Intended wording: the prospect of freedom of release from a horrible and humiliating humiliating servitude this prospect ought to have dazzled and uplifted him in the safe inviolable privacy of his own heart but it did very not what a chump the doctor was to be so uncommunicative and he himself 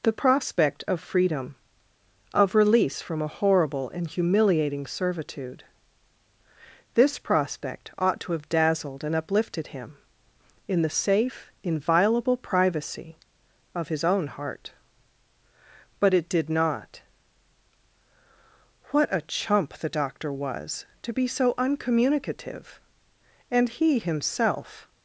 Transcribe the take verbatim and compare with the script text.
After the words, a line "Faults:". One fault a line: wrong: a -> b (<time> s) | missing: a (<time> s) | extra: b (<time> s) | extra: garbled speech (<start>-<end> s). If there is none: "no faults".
the prospect of freedom of release from a horrible and humiliating servitude this prospect ought to have dazzled and uplifted him in the safe inviolable privacy of his own heart but it did not what a chump the doctor was to be so uncommunicative and he himself
Faults:
missing: humiliating (4.9 s)
missing: very (16.5 s)